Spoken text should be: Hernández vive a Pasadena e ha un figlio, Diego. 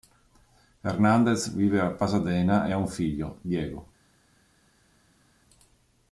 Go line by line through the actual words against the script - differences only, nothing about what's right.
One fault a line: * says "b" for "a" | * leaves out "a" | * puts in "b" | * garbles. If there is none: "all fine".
all fine